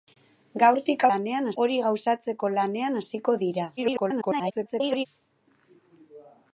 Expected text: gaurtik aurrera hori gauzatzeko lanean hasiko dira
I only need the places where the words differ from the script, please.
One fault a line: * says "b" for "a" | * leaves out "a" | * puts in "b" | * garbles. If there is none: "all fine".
* says "lanean" for "aurrera"
* garbles